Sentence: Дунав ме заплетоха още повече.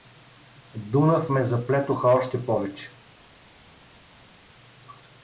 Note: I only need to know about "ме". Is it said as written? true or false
true